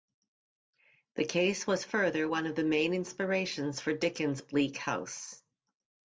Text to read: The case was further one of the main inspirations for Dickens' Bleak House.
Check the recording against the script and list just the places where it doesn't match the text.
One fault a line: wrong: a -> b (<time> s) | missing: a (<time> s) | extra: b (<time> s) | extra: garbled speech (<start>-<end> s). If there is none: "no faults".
no faults